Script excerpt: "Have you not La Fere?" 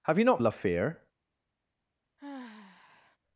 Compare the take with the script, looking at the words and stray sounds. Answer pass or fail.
fail